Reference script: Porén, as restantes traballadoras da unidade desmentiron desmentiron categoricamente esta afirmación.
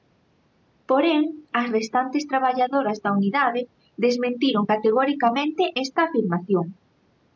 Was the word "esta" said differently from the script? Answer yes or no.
no